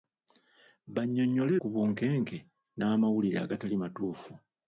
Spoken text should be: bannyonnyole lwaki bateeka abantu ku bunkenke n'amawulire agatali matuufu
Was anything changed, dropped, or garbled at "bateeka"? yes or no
yes